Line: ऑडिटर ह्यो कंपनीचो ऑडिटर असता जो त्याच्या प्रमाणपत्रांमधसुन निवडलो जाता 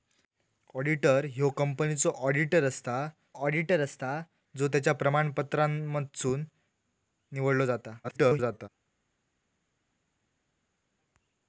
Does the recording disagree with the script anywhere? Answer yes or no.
yes